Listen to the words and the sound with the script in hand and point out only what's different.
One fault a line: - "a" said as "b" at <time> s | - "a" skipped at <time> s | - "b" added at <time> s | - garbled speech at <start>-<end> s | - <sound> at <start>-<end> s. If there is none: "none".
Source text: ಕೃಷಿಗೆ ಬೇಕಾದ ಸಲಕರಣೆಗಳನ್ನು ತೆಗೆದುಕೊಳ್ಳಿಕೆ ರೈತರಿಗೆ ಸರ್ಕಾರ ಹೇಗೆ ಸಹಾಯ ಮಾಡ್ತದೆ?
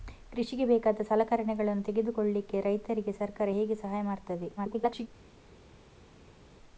- garbled speech at 4.6-5.1 s